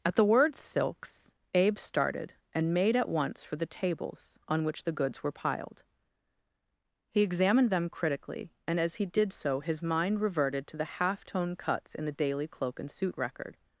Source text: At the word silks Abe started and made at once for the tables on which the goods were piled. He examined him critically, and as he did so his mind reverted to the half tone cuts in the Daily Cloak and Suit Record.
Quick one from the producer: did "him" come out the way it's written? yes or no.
no